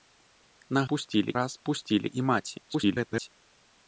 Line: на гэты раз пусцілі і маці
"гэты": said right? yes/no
no